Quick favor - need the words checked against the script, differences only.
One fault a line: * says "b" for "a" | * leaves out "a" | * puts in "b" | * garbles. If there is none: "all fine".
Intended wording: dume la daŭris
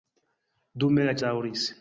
all fine